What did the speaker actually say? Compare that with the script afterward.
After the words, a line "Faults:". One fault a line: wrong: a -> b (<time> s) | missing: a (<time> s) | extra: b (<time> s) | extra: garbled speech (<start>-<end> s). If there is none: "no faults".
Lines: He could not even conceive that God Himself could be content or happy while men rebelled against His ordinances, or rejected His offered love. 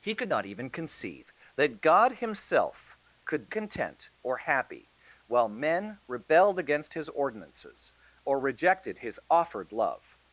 He could not even conceive that God Himself could content or happy while men rebelled against His ordinances, or rejected His offered love.
Faults:
missing: be (3.5 s)